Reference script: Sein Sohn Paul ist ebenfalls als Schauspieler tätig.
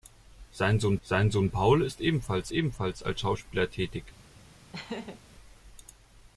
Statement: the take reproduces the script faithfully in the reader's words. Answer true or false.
false